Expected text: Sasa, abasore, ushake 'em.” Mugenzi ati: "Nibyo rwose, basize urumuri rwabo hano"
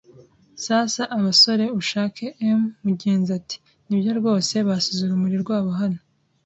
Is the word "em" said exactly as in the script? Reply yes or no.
yes